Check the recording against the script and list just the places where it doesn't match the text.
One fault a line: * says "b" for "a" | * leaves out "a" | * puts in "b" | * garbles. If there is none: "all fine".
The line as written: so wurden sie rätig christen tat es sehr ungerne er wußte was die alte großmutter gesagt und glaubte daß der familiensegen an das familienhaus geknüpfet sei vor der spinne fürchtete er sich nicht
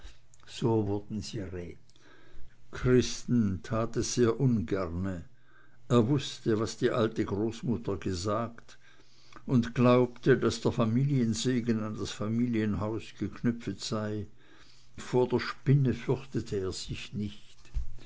all fine